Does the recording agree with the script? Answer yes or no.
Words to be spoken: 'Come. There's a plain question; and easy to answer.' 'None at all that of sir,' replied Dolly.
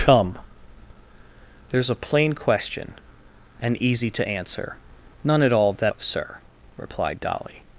yes